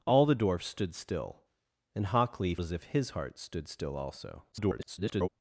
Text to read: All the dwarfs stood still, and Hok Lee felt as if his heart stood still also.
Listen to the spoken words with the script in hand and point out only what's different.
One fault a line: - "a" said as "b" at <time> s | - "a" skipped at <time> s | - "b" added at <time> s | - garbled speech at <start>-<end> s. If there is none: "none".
- "felt" skipped at 2.5 s
- garbled speech at 4.5-5.3 s